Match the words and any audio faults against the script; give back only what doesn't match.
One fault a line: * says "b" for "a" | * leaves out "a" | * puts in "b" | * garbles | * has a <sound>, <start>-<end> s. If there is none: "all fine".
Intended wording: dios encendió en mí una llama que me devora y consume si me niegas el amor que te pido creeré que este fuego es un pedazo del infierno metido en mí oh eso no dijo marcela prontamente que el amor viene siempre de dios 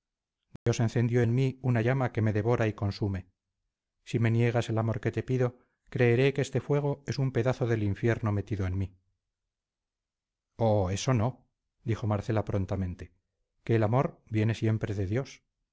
* has a dropout, 0.6-0.7 s